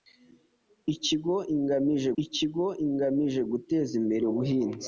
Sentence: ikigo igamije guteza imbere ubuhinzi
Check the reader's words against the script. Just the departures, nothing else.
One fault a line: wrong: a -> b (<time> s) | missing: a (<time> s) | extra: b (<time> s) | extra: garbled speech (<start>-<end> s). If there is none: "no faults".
extra: ikigo igamije (2.2 s)